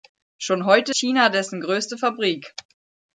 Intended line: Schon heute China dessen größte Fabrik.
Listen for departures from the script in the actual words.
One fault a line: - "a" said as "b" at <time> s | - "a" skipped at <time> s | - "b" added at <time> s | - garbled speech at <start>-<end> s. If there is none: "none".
none